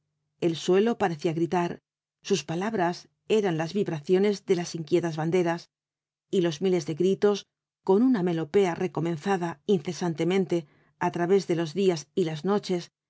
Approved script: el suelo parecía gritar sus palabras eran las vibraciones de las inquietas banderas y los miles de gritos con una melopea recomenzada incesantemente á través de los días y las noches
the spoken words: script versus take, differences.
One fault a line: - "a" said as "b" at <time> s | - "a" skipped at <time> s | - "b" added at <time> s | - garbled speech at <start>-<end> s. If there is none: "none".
none